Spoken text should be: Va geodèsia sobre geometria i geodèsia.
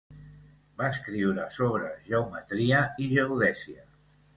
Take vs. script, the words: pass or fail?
fail